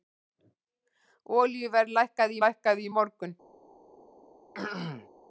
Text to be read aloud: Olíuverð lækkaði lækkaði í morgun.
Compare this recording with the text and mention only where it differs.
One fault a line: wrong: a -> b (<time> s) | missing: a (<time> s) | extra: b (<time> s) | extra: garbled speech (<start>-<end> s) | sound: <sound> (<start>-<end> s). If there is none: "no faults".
sound: throat clearing (4.5-5.1 s)